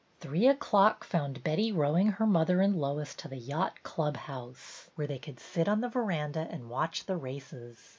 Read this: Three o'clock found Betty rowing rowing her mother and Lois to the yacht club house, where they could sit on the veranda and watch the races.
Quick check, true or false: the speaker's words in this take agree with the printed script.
false